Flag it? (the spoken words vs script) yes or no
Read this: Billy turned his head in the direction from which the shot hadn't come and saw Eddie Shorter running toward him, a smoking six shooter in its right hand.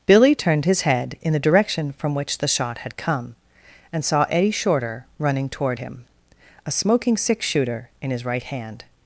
yes